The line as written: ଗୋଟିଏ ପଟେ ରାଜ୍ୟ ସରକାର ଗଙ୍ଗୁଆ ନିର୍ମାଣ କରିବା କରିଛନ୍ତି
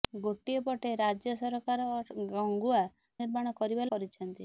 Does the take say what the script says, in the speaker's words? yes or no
yes